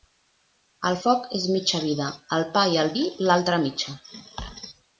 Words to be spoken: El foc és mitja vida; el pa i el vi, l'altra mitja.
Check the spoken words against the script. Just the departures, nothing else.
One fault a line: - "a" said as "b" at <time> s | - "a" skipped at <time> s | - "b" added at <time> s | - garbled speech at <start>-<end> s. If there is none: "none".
none